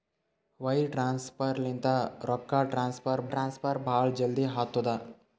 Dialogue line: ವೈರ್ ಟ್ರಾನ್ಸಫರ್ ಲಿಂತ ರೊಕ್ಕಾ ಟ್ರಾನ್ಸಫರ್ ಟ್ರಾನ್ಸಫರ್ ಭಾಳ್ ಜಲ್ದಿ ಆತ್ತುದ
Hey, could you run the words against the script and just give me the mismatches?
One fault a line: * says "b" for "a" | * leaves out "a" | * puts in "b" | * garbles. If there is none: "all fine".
all fine